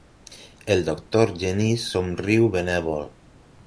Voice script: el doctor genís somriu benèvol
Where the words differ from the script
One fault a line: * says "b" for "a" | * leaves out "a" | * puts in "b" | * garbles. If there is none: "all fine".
all fine